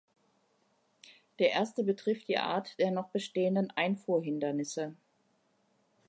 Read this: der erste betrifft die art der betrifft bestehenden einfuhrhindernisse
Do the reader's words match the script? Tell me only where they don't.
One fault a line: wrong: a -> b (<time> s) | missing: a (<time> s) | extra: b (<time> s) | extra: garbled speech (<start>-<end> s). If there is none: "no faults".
wrong: betrifft -> noch (2.9 s)